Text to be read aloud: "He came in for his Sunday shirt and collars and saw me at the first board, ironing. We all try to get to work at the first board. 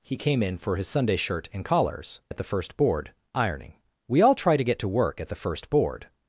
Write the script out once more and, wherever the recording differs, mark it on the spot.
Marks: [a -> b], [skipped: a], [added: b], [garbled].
"He came in for his Sunday shirt and collars [skipped: and saw me] at the first board, ironing. We all try to get to work at the first board.